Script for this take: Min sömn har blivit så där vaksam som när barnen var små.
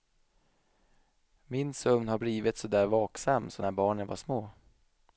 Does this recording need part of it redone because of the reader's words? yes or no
no